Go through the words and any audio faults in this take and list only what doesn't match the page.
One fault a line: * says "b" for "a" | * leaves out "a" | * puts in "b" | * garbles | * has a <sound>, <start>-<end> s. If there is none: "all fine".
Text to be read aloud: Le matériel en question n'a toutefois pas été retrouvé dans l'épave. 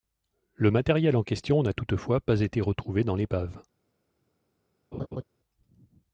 * has a laugh, 4.9-5.2 s